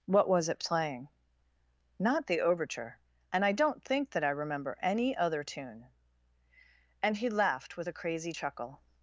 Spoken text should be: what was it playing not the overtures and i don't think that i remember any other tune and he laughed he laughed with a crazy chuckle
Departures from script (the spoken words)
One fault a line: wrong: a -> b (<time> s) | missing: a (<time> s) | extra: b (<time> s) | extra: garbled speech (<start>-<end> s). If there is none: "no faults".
wrong: overtures -> overture (2.4 s)
missing: he laughed (7.8 s)